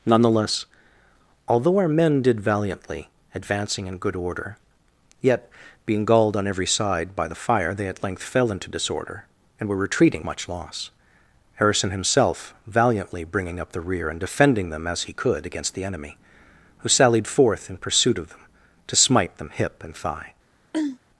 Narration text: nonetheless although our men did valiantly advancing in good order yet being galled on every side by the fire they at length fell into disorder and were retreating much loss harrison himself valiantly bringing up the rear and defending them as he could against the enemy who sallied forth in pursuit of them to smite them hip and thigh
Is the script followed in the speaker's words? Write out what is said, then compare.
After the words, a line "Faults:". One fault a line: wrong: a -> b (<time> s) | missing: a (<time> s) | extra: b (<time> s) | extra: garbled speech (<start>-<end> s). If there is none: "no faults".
nonetheless although our men did valiantly advancing in good order yet being galled on every side by the fire they at length fell into disorder and were retreating much loss harrison himself valiantly bringing up the rear and defending them as he could against the enemy who sallied forth in pursuit of them to smite them hip and thigh
Faults:
no faults